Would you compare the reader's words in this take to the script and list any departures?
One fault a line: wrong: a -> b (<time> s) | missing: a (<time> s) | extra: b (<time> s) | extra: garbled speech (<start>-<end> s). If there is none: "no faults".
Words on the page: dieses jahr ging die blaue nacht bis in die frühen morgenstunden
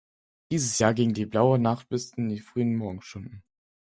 no faults